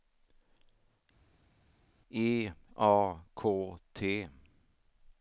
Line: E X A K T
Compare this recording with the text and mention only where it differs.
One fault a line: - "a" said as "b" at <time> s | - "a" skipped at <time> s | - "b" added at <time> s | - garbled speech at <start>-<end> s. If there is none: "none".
- "X" skipped at 2.5 s